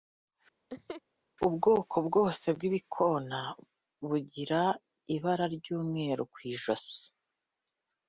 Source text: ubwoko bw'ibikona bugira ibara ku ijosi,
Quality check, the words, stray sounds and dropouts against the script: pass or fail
fail